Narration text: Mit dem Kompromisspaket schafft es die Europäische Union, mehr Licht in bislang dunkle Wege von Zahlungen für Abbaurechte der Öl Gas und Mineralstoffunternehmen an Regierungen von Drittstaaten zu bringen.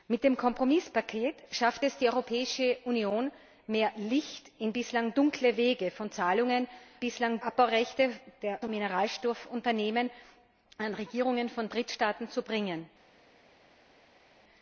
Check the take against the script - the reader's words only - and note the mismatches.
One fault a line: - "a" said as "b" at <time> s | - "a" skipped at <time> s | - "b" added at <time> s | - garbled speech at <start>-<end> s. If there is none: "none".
- "für" said as "bislang" at 7.0 s
- "Öl Gas" skipped at 8.6 s